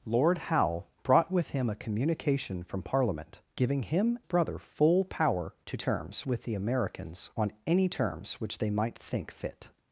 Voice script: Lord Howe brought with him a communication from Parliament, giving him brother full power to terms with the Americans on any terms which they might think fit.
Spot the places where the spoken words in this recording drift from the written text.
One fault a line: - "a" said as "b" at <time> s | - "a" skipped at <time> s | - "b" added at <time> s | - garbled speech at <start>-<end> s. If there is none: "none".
none